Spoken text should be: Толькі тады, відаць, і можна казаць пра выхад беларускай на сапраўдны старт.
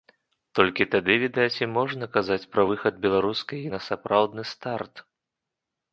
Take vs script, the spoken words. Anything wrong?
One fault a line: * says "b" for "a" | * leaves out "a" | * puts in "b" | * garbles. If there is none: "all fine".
all fine